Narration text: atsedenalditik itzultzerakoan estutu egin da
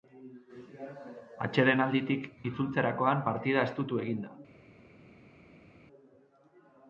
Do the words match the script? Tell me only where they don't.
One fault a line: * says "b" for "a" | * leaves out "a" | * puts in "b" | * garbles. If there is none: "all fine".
* puts in "partida"